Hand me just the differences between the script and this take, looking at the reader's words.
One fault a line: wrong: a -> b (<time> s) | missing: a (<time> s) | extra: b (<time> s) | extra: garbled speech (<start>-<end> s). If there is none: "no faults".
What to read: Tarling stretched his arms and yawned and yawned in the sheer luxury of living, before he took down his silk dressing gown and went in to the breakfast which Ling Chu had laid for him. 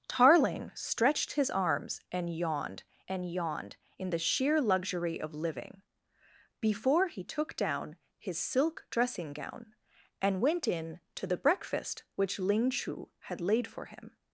no faults